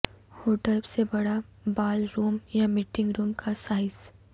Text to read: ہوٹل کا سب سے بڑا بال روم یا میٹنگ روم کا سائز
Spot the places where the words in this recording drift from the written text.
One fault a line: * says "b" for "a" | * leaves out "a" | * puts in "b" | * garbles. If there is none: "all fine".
* leaves out "کا سب"